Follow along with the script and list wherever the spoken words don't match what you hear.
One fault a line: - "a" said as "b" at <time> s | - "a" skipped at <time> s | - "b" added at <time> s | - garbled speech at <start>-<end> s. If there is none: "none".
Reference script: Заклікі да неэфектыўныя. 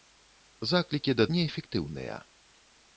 none